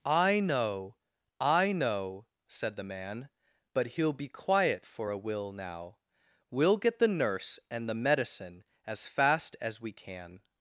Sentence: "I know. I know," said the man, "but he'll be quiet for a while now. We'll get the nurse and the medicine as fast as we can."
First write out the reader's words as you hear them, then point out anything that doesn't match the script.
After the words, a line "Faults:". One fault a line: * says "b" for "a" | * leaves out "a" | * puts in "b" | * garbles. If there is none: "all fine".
"I know. I know," said the man, "but he'll be quiet for a will now. We'll get the nurse and the medicine as fast as we can."
Faults:
* says "will" for "while"